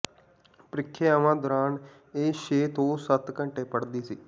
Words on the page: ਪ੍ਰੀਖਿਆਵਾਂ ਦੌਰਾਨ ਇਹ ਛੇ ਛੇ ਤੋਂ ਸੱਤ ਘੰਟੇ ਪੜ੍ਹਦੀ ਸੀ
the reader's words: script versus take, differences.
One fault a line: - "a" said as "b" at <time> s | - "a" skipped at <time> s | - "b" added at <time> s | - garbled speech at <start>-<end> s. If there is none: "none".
- "ਛੇ" skipped at 2.7 s